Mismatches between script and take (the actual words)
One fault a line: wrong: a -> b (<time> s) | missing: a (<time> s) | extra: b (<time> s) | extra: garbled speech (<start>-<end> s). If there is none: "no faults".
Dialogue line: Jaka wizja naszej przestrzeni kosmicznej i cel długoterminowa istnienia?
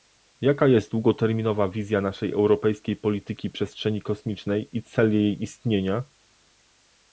extra: jest długoterminowa (0.7 s)
extra: europejskiej polityki (2.3 s)
wrong: długoterminowa -> jej (5.1 s)